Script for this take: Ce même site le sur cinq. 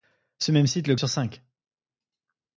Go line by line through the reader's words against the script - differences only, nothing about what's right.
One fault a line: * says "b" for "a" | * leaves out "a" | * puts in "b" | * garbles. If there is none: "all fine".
all fine